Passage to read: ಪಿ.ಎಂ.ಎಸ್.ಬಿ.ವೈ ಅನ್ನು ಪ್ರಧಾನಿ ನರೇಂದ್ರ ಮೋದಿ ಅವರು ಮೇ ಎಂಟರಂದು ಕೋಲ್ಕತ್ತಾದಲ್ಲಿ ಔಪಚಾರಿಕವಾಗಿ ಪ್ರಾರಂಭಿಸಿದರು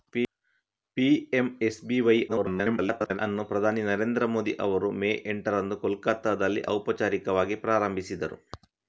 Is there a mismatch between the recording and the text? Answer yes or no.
yes